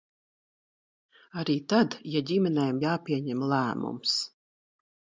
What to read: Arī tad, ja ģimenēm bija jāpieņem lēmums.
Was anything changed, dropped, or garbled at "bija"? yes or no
yes